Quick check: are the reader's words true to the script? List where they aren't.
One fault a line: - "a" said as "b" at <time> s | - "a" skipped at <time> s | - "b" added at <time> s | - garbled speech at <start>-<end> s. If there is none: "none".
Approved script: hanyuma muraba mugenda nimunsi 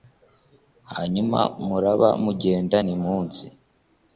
none